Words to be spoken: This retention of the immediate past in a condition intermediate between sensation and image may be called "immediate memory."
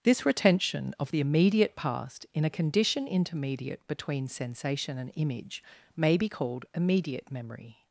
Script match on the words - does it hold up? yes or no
yes